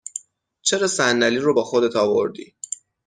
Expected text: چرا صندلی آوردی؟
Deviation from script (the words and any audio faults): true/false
true